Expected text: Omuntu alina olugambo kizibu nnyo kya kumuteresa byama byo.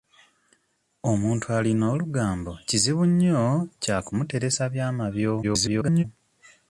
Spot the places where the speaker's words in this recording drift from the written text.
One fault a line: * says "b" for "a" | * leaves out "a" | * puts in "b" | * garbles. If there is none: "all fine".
* garbles